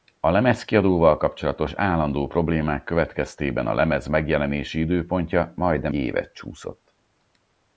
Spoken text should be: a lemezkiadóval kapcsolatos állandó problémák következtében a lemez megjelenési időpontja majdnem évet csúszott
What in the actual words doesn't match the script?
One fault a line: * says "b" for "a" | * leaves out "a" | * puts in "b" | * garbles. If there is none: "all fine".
all fine